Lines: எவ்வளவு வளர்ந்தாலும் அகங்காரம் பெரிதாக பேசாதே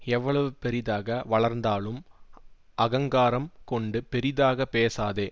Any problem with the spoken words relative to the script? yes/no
yes